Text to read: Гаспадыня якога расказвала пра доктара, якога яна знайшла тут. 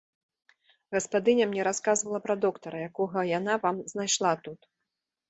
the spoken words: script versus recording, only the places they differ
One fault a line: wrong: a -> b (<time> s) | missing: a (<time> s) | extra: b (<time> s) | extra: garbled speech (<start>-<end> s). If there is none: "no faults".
wrong: якога -> мне (1.5 s)
extra: вам (3.7 s)